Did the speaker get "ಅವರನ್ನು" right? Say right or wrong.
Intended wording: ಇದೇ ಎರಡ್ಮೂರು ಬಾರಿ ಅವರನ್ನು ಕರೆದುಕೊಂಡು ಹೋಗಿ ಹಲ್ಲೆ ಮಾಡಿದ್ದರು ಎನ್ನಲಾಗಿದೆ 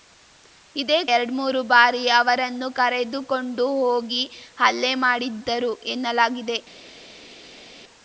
right